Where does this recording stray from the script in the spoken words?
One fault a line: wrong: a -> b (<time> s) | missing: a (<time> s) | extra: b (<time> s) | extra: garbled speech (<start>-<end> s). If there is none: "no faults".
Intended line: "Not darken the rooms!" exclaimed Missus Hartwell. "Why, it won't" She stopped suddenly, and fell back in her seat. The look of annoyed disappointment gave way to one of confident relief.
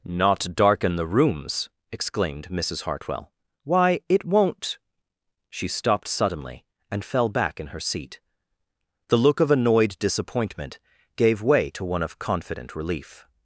no faults